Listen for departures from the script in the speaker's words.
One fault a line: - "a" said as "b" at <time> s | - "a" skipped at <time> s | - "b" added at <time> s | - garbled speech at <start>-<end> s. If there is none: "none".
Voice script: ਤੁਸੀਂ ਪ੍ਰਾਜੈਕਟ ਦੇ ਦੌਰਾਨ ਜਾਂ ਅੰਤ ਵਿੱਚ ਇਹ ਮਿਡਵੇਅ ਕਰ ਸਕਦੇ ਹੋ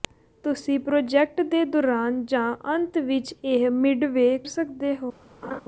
- "ਕਰ" skipped at 4.4 s